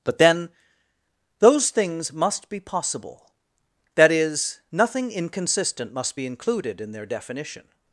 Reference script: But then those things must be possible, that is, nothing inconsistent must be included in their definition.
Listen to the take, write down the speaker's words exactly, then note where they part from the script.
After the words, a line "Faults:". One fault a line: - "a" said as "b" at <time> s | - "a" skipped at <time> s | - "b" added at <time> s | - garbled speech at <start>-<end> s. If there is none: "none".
But then those things must be possible, that is, nothing inconsistent must be included in their definition.
Faults:
none